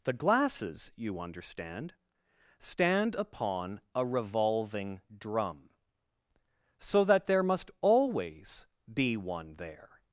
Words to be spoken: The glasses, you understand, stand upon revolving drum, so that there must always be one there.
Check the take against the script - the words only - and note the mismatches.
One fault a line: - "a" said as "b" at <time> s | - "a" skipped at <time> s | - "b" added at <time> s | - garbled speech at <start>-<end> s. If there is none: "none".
- "a" added at 3.9 s